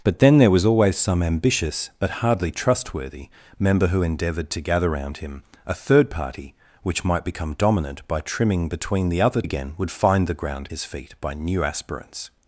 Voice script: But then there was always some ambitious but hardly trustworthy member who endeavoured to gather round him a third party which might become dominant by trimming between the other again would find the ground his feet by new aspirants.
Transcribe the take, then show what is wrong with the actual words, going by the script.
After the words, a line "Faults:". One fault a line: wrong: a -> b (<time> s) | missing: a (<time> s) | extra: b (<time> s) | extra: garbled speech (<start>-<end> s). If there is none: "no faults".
But then there was always some ambitious but hardly trustworthy member who endeavoured to gather round him a third party which might become dominant by trimming between the other again would find the ground his feet by new aspirants.
Faults:
no faults